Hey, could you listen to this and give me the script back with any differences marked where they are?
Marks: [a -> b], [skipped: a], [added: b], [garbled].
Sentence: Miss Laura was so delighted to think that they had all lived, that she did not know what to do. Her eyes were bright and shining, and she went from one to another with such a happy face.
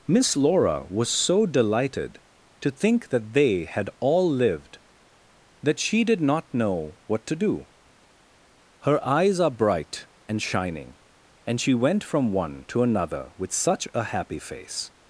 Miss Laura was so delighted to think that they had all lived, that she did not know what to do. Her eyes [were -> are] bright and shining, and she went from one to another with such a happy face.